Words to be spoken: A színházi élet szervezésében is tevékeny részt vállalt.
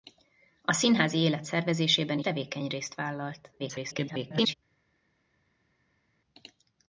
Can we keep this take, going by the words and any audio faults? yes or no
no